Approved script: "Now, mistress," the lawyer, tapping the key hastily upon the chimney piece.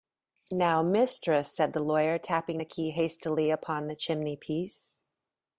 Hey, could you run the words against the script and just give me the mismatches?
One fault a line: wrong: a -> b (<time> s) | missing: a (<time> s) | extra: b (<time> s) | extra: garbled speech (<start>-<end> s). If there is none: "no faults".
extra: said (1.6 s)